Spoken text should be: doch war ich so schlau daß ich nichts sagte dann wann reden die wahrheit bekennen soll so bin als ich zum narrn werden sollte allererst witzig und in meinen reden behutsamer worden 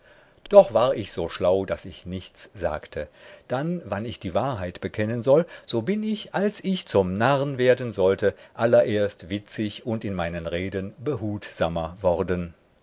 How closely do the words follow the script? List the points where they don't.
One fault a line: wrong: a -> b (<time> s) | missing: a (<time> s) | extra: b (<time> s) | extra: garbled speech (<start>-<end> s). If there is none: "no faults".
wrong: reden -> ich (4.0 s)
extra: ich (6.0 s)